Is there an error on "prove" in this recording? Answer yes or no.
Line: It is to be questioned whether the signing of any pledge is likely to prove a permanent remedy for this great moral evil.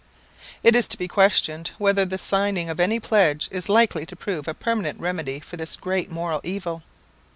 no